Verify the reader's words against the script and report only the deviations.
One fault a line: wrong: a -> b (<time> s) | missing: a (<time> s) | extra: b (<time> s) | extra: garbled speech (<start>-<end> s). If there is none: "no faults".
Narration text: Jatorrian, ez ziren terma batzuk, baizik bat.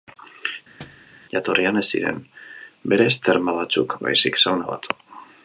extra: berez (2.9 s)
extra: sauna (4.5 s)